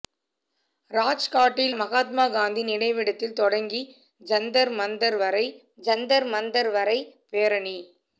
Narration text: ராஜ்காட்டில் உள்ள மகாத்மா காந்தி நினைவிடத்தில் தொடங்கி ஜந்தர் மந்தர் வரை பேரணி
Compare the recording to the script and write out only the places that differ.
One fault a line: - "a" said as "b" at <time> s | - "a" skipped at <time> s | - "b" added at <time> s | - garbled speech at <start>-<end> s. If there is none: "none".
- "உள்ள" skipped at 1.8 s
- "ஜந்தர் மந்தர் வரை" added at 5.8 s